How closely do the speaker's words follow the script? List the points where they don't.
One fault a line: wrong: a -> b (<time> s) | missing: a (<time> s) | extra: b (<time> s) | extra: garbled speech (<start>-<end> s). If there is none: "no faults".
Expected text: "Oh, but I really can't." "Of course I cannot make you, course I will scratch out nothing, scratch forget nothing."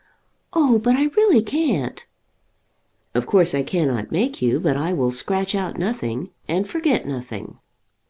wrong: course -> but (4.6 s)
wrong: scratch -> and (6.5 s)